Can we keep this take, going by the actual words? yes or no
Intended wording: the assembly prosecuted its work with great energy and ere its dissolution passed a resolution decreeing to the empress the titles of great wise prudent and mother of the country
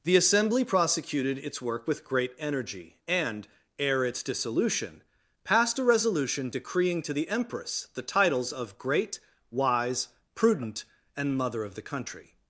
yes